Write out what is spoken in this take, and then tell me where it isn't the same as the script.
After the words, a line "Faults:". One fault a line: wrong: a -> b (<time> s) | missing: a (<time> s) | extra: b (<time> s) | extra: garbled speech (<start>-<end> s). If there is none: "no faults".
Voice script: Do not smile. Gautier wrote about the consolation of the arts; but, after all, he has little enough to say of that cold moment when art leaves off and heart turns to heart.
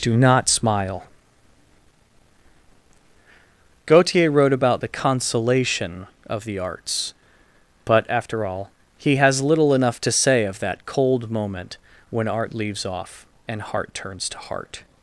Do not smile. Gautier wrote about the consolation of the arts; but, after all, he has little enough to say of that cold moment when art leaves off and heart turns to heart.
Faults:
no faults